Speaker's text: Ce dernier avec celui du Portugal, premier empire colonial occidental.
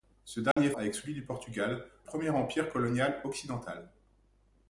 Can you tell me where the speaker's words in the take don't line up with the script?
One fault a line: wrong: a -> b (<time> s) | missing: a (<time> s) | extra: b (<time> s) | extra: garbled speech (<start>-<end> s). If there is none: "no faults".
no faults